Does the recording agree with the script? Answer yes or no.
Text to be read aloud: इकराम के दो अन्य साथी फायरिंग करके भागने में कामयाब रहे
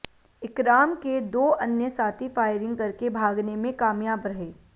yes